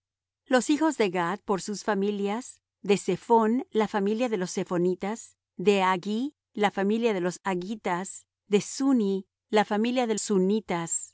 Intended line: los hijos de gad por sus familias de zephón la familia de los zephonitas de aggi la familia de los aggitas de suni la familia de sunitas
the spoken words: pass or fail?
pass